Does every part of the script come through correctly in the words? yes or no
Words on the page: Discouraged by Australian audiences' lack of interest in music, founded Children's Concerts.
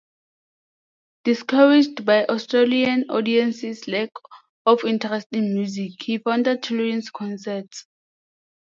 no